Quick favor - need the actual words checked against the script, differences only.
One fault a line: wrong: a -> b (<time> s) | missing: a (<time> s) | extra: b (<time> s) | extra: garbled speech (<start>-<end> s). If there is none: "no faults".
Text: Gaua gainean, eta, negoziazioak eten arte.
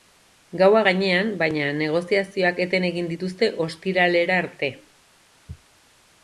wrong: eta -> baina (1.4 s)
extra: egin dituzte ostiralera (2.9 s)